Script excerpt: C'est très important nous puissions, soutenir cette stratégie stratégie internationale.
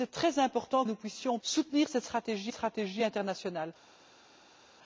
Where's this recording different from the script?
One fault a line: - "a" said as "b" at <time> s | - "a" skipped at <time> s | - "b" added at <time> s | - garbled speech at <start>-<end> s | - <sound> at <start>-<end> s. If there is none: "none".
none